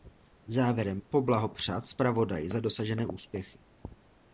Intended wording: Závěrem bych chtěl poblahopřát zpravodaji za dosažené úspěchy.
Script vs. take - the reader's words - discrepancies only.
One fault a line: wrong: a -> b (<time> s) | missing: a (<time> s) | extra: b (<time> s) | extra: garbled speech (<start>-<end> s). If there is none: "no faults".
missing: bych chtěl (1.0 s)